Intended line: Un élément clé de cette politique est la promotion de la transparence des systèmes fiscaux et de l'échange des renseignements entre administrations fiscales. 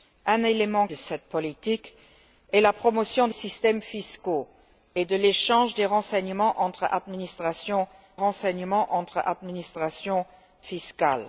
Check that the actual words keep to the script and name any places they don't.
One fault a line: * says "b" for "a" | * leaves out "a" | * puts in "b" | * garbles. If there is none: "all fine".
* leaves out "clé"
* leaves out "la transparence des"
* puts in "renseignements entre administrations"